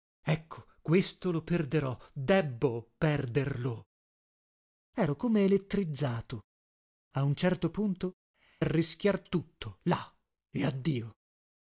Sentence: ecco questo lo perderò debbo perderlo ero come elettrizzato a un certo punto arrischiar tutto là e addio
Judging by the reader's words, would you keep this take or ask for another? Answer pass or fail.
pass